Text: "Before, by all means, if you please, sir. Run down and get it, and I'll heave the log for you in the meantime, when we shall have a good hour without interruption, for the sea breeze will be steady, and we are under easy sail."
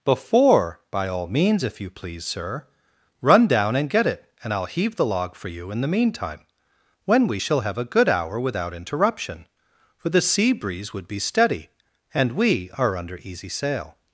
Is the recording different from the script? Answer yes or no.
yes